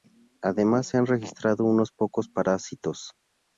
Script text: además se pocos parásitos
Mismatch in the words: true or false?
true